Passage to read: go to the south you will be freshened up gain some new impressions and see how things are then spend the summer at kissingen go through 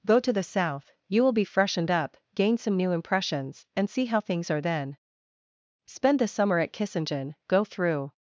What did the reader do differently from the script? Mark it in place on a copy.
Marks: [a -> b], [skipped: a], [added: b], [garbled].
go to the south you will be freshened up gain some new impressions and see how things are then spend the summer at kissingen go through